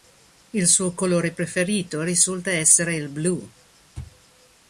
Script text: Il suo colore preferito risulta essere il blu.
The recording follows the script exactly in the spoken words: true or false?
true